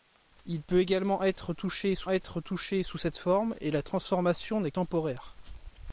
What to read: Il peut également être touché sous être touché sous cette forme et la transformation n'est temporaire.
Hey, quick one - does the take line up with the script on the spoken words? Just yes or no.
yes